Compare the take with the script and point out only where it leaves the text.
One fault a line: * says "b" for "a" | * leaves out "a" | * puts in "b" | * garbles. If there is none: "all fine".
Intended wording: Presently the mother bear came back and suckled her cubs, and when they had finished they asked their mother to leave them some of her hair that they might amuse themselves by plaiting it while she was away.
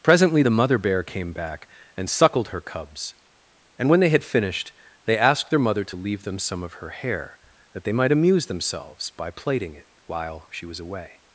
all fine